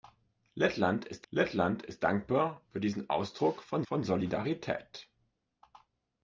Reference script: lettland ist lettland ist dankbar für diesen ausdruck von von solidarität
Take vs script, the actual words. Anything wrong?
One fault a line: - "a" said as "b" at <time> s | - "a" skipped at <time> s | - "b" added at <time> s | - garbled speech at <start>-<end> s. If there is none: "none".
none